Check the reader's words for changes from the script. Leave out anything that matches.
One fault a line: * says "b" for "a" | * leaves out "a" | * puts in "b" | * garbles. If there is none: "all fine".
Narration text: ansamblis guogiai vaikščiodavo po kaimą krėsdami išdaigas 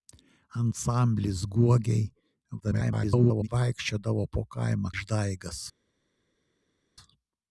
* garbles
* leaves out "krėsdami"